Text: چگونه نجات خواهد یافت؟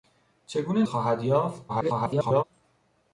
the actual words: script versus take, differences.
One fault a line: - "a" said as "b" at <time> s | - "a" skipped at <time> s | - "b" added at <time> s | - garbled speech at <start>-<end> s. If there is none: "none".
- "نجات" skipped at 0.8 s
- garbled speech at 1.7-2.4 s